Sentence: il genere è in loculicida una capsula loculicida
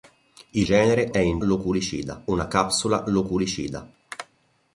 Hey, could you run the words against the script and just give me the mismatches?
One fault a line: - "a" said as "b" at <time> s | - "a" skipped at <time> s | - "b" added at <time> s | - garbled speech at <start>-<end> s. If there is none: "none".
none